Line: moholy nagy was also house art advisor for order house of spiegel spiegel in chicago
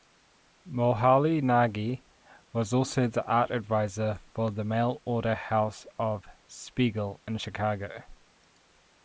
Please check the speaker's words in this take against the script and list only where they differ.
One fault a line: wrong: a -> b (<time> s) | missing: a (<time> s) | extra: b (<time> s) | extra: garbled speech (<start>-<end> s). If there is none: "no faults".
wrong: house -> the (3.1 s)
extra: the mail (4.5 s)
missing: spiegel (7.2 s)